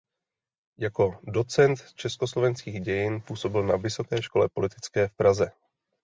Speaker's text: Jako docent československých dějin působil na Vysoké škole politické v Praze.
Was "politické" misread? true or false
false